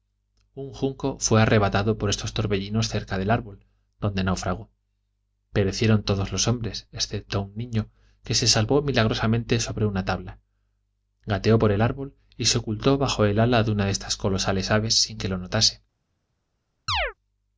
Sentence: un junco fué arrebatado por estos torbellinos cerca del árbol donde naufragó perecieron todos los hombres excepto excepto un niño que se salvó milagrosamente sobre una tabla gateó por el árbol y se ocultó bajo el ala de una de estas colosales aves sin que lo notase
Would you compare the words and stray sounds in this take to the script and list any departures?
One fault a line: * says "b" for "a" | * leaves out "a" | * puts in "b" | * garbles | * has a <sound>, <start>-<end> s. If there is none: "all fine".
* leaves out "excepto"
* has a chirp, 16.9-17.1 s